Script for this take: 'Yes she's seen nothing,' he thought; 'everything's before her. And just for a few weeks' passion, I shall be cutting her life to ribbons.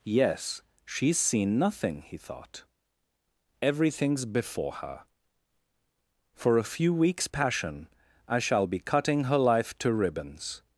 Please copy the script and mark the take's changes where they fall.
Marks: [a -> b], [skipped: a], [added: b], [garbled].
'Yes she's seen nothing,' he thought; 'everything's before her. [skipped: And just] for a few weeks' passion, I shall be cutting her life to ribbons.